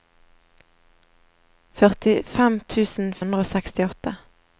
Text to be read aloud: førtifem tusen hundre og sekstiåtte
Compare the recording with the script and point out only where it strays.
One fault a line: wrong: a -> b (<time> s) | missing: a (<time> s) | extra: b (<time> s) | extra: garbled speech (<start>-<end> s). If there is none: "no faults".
no faults